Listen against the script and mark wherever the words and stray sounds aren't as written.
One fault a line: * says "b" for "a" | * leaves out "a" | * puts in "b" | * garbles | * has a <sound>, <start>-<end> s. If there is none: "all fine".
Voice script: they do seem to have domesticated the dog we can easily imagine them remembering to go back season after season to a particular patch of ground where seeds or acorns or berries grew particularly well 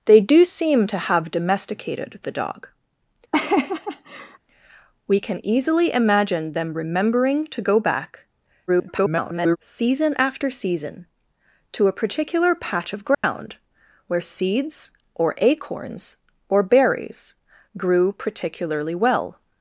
* has a laugh, 3.3-4.4 s
* garbles
* has a dropout, 13.1-13.2 s